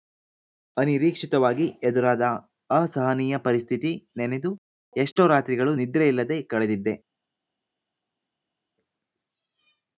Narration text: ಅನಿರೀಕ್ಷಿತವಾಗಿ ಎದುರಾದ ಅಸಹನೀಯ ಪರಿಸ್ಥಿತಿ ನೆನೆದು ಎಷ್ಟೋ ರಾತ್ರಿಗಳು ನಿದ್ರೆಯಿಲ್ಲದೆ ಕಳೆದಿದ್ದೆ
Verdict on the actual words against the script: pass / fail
pass